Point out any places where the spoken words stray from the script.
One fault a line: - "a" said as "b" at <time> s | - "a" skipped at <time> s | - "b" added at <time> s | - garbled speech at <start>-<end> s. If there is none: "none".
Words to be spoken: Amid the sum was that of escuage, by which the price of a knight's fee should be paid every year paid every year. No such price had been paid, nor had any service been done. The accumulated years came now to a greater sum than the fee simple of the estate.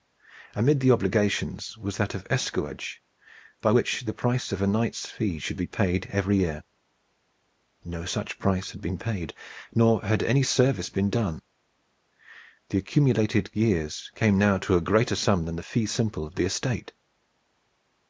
- "sum" said as "obligations" at 0.9 s
- "paid every year" skipped at 6.6 s